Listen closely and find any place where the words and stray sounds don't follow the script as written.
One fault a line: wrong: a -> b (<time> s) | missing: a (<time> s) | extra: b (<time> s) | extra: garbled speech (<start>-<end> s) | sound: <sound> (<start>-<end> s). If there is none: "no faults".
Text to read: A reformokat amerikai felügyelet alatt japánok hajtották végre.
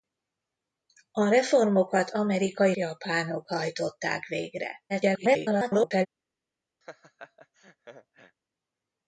missing: felügyelet alatt (2.8 s)
extra: garbled speech (4.9-6.1 s)
sound: laugh (6.8-8.4 s)